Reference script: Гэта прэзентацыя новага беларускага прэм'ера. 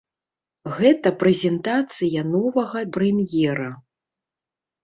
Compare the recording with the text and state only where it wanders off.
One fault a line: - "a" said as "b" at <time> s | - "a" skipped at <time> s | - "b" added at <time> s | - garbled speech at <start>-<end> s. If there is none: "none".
- "беларускага" skipped at 2.8 s